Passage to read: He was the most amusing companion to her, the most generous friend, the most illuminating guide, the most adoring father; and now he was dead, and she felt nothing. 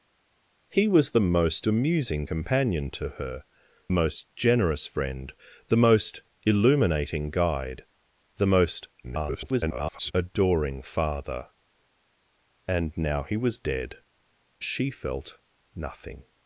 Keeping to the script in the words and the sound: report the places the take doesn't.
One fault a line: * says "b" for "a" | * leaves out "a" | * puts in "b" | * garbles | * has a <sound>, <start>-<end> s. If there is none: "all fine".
* leaves out "the"
* garbles
* leaves out "and"